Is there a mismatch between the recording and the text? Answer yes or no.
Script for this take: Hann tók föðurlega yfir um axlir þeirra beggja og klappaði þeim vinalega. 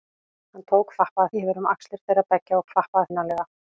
yes